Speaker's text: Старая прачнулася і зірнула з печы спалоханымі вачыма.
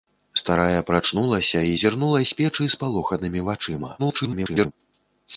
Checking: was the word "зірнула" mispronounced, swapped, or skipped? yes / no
no